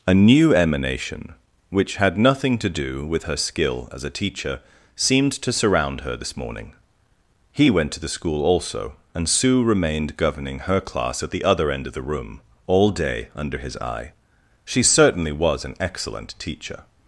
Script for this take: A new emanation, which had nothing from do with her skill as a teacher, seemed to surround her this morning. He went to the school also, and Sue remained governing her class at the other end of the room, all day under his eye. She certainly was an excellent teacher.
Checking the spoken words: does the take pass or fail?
fail